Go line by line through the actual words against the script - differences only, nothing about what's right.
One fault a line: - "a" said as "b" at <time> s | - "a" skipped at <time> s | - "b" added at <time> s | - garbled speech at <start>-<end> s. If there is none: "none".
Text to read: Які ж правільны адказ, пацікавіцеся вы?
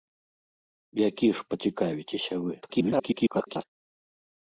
- "правільны адказ" skipped at 1.4 s
- garbled speech at 2.6-3.6 s